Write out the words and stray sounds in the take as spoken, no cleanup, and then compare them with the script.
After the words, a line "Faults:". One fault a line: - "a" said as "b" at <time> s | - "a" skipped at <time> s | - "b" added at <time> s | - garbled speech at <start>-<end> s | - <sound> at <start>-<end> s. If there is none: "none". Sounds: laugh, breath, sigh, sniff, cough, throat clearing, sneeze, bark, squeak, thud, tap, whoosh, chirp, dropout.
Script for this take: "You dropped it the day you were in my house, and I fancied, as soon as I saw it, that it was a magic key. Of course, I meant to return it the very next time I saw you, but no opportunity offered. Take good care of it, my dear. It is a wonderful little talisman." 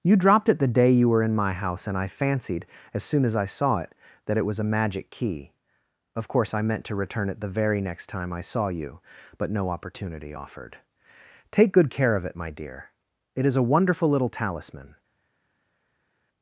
"You dropped it the day you were in my house, and I fancied, as soon as I saw it, that it was a magic key. Of course, I meant to return it the very next time I saw you, but no opportunity offered. Take good care of it, my dear. It is a wonderful little talisman."
Faults:
none